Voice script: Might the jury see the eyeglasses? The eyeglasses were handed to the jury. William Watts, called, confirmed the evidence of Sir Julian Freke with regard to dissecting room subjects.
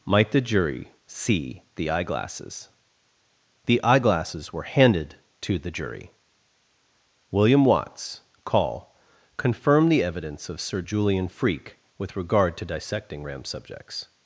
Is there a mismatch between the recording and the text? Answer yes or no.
yes